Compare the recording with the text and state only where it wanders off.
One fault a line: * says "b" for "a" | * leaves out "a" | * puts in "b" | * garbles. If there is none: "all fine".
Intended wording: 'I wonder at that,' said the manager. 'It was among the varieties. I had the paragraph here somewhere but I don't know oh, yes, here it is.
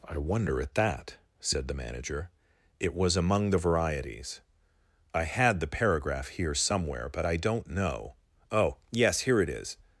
all fine